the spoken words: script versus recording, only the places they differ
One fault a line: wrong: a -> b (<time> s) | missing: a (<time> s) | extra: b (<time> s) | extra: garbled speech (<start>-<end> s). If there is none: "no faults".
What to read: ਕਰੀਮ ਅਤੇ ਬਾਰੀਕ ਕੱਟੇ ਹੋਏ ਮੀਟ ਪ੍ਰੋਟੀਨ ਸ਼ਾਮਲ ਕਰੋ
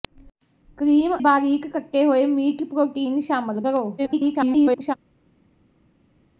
missing: ਅਤੇ (1.1 s)
extra: garbled speech (4.0-4.9 s)